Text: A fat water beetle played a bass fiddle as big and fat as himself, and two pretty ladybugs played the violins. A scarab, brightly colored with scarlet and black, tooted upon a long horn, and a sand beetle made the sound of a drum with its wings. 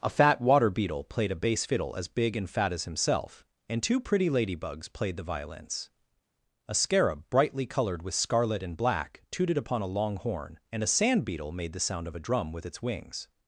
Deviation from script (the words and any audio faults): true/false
false